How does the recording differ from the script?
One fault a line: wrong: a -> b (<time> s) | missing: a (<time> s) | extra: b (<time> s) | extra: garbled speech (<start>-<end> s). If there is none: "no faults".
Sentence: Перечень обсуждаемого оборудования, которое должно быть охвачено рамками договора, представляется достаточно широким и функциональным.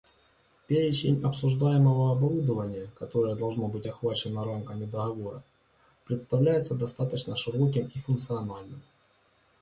no faults